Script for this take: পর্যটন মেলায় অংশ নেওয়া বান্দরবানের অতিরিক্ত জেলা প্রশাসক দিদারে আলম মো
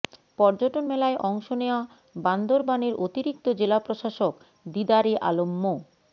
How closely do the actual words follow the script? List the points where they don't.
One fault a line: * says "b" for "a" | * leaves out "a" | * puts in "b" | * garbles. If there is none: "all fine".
all fine